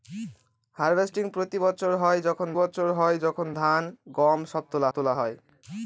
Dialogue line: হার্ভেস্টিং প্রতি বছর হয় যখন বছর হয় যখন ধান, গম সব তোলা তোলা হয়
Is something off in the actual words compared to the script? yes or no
no